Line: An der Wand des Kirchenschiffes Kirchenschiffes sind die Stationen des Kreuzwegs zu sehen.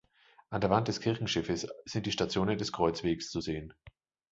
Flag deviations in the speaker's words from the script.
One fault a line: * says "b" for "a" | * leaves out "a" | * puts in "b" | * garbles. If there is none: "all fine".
* leaves out "Kirchenschiffes"